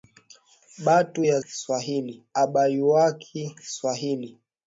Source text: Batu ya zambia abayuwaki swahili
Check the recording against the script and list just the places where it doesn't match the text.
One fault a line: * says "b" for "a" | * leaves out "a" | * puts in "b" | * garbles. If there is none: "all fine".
* says "swahili" for "zambia"